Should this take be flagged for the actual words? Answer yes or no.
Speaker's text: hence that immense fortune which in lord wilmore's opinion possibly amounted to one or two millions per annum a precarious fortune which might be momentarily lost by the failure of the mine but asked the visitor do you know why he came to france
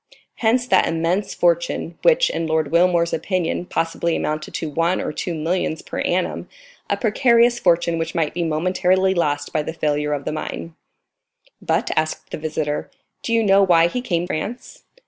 yes